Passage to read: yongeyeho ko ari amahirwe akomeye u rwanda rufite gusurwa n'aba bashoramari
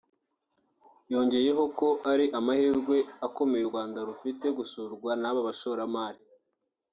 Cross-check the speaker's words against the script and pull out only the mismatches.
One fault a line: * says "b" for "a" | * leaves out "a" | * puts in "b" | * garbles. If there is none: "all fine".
all fine